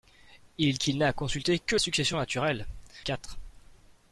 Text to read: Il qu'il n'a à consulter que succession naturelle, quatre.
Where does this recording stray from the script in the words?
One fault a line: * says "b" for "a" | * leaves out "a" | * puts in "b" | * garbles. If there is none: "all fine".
all fine